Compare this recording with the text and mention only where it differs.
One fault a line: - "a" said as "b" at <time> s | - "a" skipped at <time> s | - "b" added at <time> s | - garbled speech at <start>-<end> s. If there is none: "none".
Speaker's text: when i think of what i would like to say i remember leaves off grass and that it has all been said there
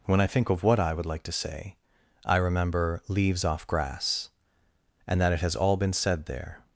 none